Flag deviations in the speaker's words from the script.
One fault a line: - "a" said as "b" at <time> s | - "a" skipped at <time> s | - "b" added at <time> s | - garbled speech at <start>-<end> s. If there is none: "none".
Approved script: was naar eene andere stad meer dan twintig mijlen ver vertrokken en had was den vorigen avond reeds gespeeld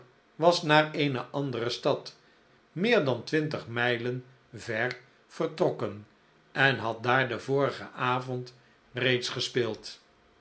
- "was" said as "daar" at 7.0 s